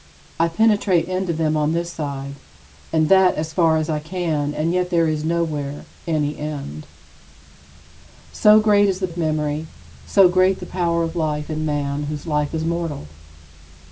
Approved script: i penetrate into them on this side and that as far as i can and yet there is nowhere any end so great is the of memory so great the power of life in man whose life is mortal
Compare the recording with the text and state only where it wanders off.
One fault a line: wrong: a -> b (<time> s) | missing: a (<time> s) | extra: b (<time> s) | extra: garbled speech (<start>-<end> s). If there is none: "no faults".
no faults